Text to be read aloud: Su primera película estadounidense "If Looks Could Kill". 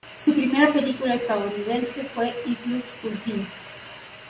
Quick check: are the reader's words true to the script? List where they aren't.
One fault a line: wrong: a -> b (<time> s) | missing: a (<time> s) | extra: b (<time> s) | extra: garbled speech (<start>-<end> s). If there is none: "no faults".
extra: fue (2.0 s)